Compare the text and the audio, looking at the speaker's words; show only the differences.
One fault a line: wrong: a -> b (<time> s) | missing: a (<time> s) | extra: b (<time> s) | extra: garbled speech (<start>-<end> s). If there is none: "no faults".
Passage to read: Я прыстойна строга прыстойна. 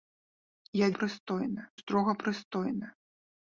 no faults